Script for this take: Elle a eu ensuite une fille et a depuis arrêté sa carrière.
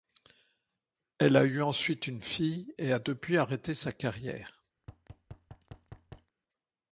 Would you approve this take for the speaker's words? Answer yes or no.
yes